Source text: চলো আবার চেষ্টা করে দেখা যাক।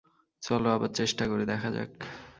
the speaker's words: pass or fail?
pass